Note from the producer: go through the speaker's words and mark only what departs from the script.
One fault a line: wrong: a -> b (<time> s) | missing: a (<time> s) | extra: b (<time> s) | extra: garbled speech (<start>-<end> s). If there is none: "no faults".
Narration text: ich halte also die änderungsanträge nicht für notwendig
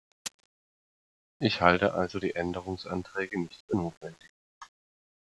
no faults